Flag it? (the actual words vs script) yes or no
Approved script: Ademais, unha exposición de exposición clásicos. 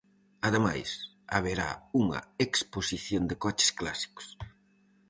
yes